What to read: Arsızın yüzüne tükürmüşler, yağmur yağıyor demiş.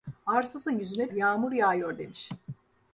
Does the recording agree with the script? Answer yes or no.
no